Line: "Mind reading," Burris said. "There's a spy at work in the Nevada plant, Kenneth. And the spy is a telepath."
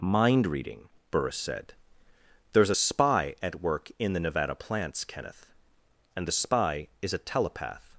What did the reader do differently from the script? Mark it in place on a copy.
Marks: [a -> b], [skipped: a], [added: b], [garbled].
"Mind reading," Burris said. "There's a spy at work in the Nevada [plant, -> plants] Kenneth. And the spy is a telepath."